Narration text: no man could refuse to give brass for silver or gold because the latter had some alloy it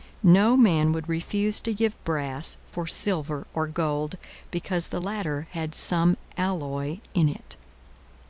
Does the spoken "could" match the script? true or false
false